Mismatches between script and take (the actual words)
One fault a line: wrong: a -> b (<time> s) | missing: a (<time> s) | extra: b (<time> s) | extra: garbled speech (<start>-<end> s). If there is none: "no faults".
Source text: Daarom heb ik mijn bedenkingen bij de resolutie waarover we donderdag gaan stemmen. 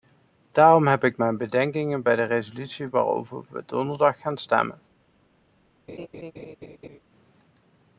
no faults